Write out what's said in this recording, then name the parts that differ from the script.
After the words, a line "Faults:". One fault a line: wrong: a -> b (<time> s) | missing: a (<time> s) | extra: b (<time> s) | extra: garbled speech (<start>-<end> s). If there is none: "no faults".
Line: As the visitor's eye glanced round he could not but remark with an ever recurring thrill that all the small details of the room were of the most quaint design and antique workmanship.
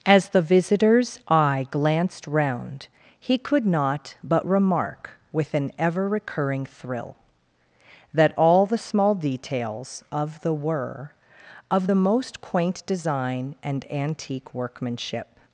As the visitor's eye glanced round he could not but remark with an ever recurring thrill that all the small details of the were of the most quaint design and antique workmanship.
Faults:
missing: room (10.5 s)